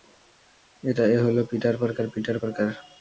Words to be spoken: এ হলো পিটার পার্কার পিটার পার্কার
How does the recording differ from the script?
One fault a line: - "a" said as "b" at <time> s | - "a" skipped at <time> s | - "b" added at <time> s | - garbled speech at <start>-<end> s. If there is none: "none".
none